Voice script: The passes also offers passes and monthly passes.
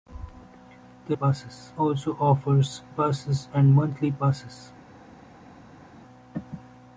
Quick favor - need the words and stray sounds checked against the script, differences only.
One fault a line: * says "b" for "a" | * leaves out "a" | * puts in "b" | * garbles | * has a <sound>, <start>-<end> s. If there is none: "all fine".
all fine